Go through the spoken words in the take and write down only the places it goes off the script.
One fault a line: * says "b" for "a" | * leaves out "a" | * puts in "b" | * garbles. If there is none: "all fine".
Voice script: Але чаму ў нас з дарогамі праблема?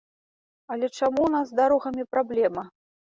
all fine